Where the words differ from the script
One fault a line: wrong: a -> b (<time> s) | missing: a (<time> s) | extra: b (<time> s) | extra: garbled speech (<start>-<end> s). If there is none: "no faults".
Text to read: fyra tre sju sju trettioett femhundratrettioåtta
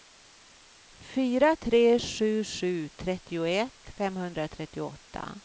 no faults